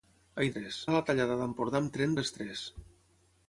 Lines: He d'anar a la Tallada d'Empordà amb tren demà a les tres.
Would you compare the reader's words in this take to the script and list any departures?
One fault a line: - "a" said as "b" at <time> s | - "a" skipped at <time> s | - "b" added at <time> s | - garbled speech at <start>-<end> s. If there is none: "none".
- "d'anar" said as "tres" at 0.5 s
- "demà" skipped at 2.2 s